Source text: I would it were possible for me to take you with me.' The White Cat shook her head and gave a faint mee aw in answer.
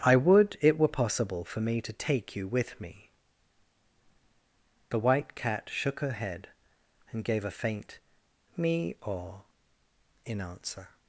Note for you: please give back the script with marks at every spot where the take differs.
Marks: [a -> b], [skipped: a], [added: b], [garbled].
I would it were possible for me to take you with me.' The White Cat shook her head and gave a faint mee aw in answer.